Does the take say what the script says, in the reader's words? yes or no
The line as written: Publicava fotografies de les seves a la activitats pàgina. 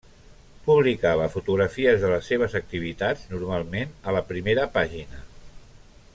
no